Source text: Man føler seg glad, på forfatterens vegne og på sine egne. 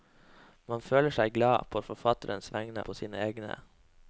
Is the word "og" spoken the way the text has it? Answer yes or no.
no